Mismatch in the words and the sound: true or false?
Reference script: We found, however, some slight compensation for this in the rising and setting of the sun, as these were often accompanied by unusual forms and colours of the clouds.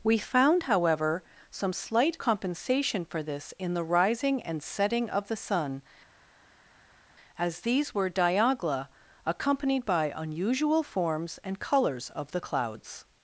true